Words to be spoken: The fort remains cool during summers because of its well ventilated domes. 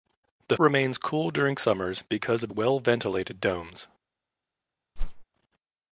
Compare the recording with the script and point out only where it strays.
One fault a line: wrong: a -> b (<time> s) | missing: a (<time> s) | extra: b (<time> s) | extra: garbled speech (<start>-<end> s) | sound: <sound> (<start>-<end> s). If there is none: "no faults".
missing: fort (0.6 s)
missing: its (2.5 s)
sound: whoosh (5.0-5.2 s)